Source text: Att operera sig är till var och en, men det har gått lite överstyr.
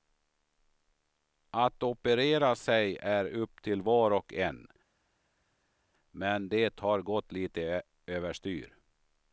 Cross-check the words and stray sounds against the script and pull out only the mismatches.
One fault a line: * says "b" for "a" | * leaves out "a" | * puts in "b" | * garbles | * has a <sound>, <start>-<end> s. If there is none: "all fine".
* puts in "upp"